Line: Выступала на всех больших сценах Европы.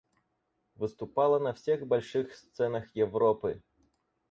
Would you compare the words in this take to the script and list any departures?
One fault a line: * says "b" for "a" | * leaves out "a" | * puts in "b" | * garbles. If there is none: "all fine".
all fine